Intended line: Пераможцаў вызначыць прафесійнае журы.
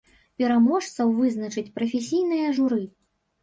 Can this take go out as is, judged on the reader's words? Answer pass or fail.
pass